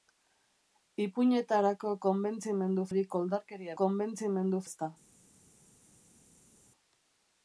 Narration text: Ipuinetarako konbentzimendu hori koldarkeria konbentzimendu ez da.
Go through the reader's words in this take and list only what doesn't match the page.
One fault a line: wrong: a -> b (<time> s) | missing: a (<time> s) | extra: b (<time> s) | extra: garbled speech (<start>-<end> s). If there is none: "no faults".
no faults